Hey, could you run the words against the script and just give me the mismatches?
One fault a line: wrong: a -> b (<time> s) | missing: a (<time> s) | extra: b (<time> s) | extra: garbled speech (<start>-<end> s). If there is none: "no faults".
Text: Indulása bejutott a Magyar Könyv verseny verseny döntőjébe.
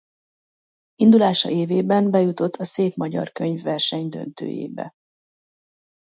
extra: évében (1.5 s)
extra: Szép (2.6 s)
missing: verseny (4.1 s)